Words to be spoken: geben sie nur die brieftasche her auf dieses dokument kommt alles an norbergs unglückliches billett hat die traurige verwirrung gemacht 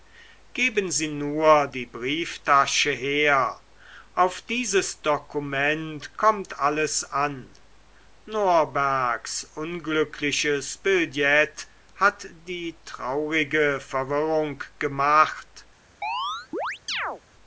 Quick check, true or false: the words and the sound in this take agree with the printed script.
false